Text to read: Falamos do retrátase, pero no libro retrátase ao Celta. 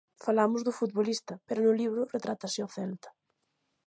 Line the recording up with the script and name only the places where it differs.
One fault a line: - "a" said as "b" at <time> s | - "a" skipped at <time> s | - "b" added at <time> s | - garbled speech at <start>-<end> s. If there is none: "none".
- "retrátase" said as "futbolista" at 0.8 s